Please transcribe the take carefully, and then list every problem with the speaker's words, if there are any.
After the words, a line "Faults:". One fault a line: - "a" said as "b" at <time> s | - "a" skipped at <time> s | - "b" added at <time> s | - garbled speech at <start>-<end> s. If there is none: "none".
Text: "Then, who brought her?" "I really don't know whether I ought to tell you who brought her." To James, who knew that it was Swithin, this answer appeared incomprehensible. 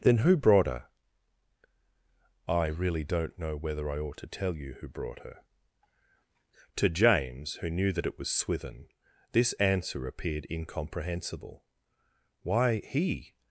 "Then, who brought her?" "I really don't know whether I ought to tell you who brought her." To James, who knew that it was Swithin, this answer appeared incomprehensible. "Why!" he
Faults:
- "Why he" added at 12.4 s